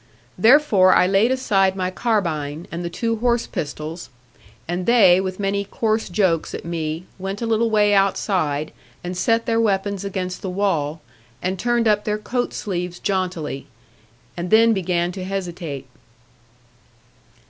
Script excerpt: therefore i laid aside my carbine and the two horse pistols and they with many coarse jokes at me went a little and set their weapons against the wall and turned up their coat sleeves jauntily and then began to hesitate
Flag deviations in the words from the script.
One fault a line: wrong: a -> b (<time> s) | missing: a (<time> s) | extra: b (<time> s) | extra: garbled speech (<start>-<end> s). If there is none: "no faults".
extra: way outside (7.7 s)